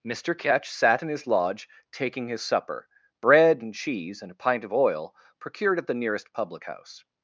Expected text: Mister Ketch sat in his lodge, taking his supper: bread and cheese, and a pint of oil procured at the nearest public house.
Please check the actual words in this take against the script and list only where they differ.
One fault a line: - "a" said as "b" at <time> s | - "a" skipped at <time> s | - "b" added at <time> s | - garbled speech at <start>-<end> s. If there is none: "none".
none